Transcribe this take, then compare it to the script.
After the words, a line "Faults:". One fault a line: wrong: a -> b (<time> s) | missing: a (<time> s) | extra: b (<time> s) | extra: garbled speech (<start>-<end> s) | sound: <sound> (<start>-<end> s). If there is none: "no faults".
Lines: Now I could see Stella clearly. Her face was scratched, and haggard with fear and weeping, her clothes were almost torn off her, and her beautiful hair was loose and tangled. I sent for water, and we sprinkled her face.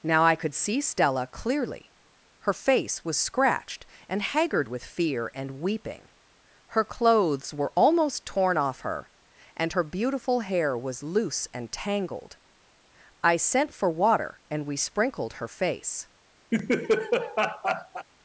Now I could see Stella clearly. Her face was scratched, and haggard with fear and weeping, her clothes were almost torn off her, and her beautiful hair was loose and tangled. I sent for water, and we sprinkled her face.
Faults:
sound: laugh (16.5-18.1 s)